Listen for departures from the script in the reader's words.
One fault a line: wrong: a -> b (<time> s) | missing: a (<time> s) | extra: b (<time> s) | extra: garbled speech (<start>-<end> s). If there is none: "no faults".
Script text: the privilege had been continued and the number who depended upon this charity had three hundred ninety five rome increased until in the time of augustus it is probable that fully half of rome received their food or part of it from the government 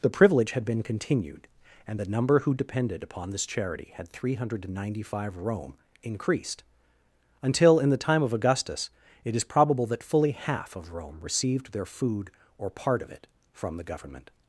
no faults